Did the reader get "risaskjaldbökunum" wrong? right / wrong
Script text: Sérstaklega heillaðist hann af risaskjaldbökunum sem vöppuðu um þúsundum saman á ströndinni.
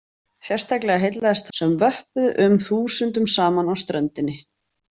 wrong